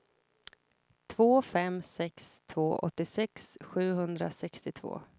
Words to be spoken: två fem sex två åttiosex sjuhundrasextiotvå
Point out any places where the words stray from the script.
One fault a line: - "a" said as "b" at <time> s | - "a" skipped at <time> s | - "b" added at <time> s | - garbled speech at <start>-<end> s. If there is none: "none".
none